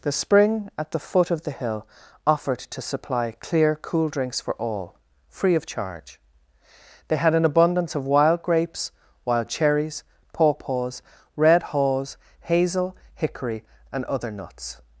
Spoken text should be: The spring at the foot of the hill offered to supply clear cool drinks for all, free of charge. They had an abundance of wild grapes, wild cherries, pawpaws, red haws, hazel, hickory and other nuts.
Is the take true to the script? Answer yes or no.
yes